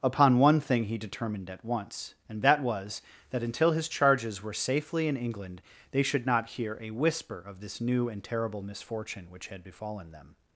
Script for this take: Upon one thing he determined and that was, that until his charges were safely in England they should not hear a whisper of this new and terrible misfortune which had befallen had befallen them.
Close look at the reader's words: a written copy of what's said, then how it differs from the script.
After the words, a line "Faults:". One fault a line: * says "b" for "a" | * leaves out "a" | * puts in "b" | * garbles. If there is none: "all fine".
Upon one thing he determined at once, and that was, that until his charges were safely in England they should not hear a whisper of this new and terrible misfortune which had befallen them.
Faults:
* puts in "at once"
* leaves out "had befallen"